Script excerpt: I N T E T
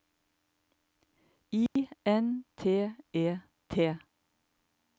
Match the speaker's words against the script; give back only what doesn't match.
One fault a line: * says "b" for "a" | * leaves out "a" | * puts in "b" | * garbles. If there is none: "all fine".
all fine